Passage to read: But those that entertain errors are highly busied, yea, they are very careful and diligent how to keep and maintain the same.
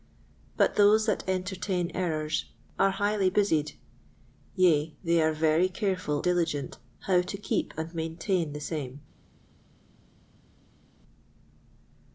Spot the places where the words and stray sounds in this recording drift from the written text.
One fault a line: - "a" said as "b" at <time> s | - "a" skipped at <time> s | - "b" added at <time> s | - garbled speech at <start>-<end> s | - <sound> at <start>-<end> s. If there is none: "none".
- "and" skipped at 6.2 s